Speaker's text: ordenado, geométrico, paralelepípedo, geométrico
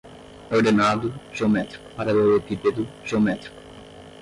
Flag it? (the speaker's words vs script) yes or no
no